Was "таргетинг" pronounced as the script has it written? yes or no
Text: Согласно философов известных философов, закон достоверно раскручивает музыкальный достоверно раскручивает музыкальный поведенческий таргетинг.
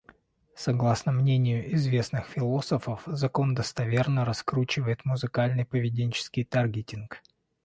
yes